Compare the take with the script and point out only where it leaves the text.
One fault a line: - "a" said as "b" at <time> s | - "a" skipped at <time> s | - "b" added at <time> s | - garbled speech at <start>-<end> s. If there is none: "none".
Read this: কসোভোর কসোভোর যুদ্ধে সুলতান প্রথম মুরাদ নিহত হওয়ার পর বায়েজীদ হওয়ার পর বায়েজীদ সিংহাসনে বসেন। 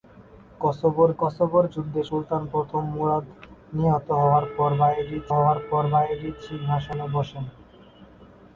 none